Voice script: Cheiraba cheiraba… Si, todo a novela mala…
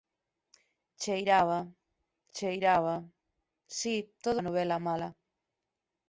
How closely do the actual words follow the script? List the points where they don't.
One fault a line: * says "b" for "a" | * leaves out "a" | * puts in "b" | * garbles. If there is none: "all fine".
all fine